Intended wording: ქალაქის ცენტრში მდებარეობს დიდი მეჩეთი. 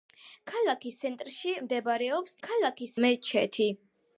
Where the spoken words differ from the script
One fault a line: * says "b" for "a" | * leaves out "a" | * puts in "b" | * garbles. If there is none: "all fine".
* says "ქალაქის" for "დიდი"